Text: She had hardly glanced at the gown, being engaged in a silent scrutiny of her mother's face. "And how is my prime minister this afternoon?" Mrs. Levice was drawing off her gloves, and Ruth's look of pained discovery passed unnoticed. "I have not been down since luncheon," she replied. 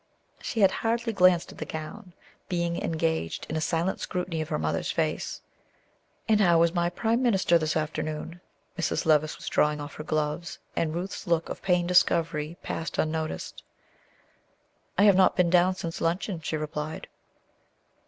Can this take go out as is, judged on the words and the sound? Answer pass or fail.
pass